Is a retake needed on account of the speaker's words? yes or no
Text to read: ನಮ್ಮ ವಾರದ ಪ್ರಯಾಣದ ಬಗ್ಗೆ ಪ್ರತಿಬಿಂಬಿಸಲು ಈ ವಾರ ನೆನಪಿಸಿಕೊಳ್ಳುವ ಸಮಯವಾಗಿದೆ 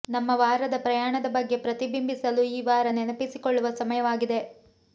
no